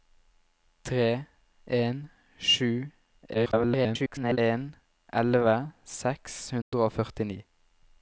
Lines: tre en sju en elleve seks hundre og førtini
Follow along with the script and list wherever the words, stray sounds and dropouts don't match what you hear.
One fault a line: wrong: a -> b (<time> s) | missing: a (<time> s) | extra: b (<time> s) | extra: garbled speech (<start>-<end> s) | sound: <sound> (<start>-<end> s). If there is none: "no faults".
extra: garbled speech (3.3-4.4 s)
sound: dropout (6.6-6.7 s)